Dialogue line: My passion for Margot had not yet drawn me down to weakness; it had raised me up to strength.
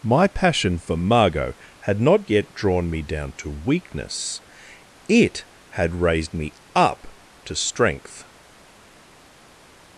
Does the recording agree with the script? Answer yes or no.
yes